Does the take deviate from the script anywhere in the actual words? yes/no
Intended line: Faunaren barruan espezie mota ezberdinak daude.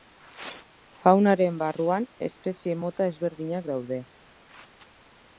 no